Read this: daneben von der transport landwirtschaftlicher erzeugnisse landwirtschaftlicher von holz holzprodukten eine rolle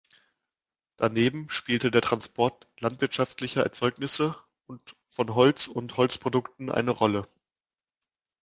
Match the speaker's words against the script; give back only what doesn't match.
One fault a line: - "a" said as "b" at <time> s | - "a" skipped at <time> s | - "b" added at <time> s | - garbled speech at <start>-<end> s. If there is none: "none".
- "von" said as "spielte" at 1.5 s
- "landwirtschaftlicher" said as "und" at 4.7 s
- "und" added at 5.7 s